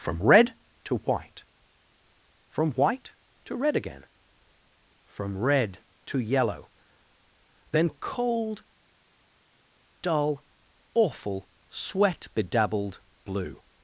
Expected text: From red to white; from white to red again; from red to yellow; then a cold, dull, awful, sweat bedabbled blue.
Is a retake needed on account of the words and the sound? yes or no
no